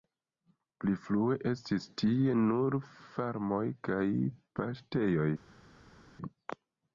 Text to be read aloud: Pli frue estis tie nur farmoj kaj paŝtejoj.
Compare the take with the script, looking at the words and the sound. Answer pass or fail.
pass